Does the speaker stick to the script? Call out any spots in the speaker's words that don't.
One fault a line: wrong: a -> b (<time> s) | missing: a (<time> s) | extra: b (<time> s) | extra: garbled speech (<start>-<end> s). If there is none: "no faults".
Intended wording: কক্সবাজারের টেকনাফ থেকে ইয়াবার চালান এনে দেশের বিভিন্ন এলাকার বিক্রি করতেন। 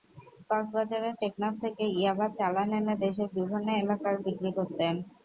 no faults